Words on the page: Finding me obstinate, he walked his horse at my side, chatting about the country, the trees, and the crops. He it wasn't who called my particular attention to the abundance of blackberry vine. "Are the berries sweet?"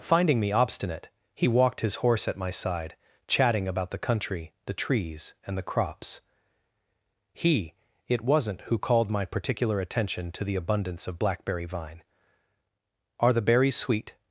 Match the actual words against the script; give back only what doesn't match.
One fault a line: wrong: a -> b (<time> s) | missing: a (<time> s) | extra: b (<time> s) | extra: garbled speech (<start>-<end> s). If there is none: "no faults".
no faults